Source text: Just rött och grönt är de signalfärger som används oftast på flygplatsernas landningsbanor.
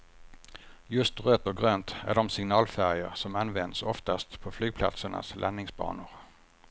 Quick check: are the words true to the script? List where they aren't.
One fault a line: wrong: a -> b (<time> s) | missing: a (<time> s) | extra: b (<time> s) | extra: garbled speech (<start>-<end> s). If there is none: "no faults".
no faults